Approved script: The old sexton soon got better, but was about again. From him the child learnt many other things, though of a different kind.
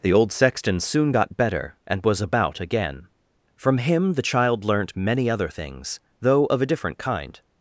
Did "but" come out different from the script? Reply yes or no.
yes